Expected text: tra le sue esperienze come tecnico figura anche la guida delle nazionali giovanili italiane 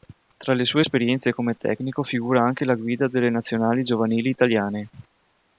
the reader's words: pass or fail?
pass